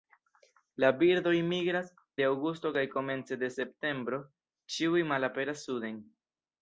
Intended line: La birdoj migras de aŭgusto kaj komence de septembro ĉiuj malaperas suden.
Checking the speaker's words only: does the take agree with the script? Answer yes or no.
yes